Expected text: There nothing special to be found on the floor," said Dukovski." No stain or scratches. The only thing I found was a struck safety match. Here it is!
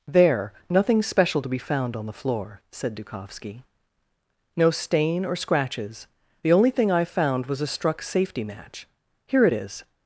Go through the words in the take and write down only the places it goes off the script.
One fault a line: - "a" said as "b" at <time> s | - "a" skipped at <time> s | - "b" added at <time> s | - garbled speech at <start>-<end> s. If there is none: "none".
none